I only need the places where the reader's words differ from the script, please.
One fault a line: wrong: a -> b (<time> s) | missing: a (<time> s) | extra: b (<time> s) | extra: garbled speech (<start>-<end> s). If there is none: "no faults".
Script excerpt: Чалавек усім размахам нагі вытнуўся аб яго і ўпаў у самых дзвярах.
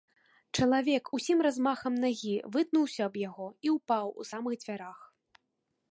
no faults